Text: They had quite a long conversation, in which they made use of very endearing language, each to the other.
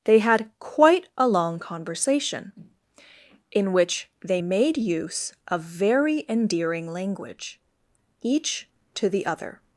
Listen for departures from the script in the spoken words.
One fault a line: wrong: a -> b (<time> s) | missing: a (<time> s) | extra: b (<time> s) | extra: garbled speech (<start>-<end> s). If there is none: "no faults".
no faults